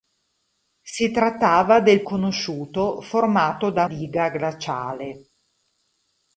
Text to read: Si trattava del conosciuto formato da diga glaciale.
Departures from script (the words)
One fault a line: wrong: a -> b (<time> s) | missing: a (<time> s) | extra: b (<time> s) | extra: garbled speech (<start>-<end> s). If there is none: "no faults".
no faults